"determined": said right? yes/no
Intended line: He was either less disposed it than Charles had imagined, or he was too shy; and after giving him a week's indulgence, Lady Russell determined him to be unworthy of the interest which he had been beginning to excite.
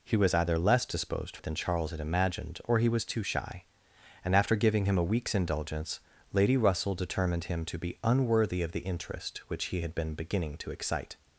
yes